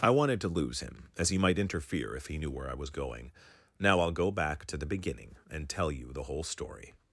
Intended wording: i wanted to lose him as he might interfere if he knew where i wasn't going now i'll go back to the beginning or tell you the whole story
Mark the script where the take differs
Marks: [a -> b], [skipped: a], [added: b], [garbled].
i wanted to lose him as he might interfere if he knew where i [wasn't -> was] going now i'll go back to the beginning [or -> and] tell you the whole story